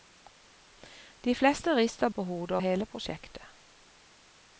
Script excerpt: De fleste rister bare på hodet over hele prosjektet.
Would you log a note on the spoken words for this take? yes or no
yes